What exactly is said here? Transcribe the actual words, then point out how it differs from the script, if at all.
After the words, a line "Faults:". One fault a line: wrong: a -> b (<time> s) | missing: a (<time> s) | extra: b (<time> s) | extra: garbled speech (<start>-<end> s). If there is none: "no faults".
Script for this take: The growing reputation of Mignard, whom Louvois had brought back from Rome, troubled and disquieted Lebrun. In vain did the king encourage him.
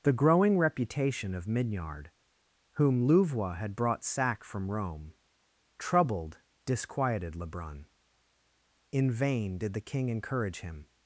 The growing reputation of Mignard, whom Louvois had brought sack from Rome, troubled disquieted Lebrun. In vain did the king encourage him.
Faults:
wrong: back -> sack (4.0 s)
missing: and (6.4 s)